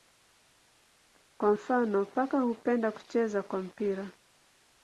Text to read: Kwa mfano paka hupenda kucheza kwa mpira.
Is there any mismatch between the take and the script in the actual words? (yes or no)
no